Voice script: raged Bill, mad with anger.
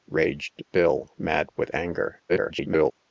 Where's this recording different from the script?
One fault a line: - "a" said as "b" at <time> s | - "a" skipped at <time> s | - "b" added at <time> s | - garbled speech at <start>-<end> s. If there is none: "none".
- garbled speech at 2.3-2.9 s